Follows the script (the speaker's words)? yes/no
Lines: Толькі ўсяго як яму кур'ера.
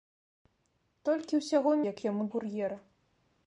yes